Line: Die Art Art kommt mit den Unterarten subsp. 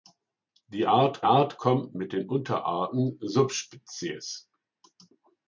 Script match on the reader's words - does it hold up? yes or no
yes